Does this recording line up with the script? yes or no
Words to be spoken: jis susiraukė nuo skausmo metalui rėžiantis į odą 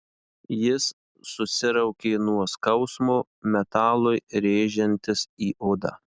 yes